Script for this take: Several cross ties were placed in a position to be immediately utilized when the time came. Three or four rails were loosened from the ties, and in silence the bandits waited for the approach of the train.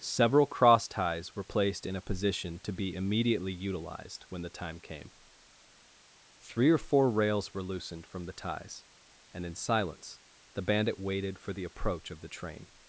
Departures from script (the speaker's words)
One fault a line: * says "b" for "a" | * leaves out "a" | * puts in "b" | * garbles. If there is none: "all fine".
* says "bandit" for "bandits"